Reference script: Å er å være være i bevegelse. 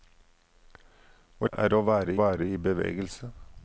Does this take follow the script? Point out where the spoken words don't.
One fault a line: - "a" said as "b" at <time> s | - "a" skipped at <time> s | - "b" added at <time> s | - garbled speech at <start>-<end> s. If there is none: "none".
none